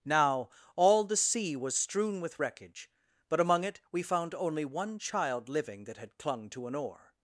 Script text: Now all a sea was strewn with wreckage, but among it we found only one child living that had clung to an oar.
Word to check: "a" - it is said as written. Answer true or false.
false